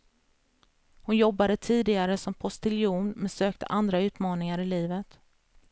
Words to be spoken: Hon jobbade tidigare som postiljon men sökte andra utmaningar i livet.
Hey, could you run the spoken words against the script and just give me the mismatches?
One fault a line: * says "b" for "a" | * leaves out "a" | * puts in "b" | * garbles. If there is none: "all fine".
all fine